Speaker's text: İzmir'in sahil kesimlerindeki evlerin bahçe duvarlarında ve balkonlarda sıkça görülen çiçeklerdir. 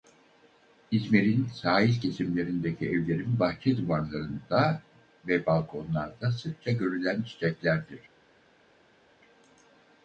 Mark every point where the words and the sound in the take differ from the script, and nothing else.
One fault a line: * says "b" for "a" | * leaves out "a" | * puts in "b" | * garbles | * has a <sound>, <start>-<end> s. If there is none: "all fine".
all fine